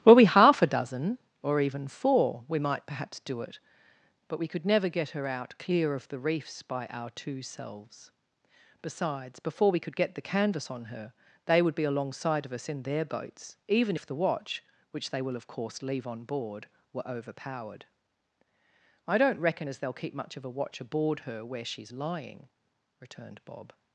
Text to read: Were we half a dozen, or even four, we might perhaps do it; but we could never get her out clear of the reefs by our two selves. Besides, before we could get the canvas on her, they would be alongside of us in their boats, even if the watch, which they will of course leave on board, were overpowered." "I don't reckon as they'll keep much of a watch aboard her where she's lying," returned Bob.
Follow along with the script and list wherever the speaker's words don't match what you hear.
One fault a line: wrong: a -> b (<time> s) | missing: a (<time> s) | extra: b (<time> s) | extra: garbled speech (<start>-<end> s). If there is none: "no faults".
no faults